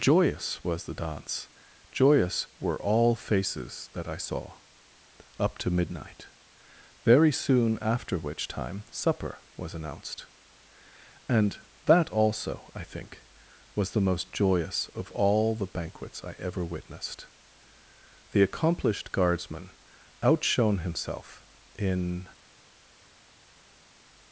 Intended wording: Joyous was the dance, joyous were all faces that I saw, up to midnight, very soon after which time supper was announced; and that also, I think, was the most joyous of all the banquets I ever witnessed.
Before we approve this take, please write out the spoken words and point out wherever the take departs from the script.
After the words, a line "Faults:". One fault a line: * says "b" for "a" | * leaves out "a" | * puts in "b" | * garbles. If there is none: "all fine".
Joyous was the dance, joyous were all faces that I saw, up to midnight, very soon after which time supper was announced; and that also, I think, was the most joyous of all the banquets I ever witnessed. The accomplished guardsman outshone himself in
Faults:
* puts in "The accomplished guardsman outshone himself in"